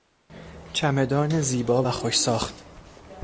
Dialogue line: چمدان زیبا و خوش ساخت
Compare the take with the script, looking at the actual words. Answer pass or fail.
pass